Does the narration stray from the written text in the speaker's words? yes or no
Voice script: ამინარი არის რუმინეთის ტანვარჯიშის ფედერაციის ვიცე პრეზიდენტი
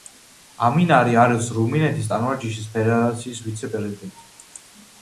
no